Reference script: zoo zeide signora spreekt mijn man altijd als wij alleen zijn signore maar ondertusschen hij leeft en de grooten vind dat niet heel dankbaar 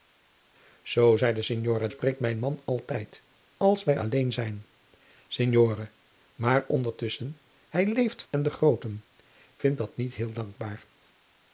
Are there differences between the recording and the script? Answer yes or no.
no